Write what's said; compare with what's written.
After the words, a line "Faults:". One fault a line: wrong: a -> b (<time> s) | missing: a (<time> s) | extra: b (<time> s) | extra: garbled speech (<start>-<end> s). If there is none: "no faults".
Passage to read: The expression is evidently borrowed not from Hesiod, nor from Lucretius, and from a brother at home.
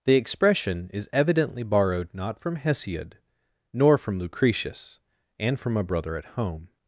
The expression is evidently borrowed not from Hesiod, nor from Lucretius, and from a brother at home.
Faults:
no faults